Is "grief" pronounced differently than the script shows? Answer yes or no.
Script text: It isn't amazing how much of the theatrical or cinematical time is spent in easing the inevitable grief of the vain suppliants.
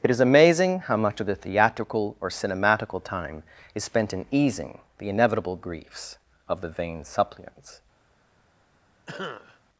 yes